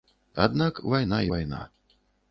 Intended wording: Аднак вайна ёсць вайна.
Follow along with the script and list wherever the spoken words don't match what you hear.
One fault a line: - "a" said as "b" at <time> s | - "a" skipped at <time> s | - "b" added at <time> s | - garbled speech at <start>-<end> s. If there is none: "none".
- "ёсць" skipped at 1.2 s